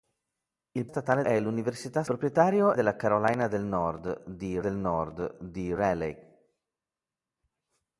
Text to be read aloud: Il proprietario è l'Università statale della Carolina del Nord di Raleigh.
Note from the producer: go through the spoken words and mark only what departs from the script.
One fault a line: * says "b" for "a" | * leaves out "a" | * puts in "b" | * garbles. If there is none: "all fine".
* says "statale" for "proprietario"
* says "proprietario" for "statale"
* puts in "del Nord di"